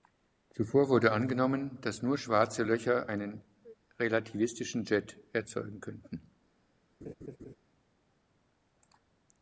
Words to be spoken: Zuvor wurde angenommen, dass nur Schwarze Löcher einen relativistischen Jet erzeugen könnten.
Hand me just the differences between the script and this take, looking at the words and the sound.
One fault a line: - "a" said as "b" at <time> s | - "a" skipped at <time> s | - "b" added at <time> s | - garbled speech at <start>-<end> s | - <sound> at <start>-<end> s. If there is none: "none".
- laugh at 7.0-7.6 s